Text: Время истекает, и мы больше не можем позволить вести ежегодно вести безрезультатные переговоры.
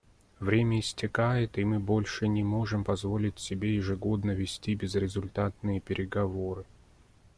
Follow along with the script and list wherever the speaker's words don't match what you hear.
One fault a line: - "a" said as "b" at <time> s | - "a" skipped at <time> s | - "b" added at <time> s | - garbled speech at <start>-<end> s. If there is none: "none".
- "вести" said as "себе" at 3.4 s